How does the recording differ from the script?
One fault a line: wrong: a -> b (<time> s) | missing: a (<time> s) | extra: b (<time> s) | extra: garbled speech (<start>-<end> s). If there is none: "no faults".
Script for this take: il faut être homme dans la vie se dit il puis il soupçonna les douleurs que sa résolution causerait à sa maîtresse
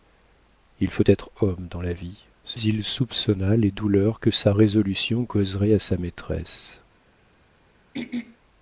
missing: dit il puis (2.6 s)